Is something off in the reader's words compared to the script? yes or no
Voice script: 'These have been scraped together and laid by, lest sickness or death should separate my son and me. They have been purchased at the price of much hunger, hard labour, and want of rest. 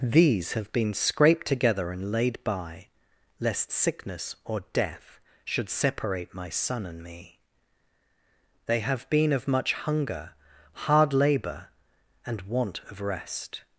yes